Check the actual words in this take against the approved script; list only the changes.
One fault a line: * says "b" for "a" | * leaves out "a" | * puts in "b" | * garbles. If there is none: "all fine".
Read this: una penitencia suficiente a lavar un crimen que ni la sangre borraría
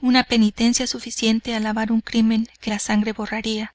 * leaves out "ni"